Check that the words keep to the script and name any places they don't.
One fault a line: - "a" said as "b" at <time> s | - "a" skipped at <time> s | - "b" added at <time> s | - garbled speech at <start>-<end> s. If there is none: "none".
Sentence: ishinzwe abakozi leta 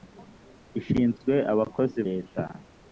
none